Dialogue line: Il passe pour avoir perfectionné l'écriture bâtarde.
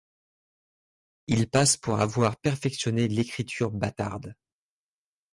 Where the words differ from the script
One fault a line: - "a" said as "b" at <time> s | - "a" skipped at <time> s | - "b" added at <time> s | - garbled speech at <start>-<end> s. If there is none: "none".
none